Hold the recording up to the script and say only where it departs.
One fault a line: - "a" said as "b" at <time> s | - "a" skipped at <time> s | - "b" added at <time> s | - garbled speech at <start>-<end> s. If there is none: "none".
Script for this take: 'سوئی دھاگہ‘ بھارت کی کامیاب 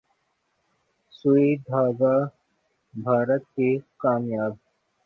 none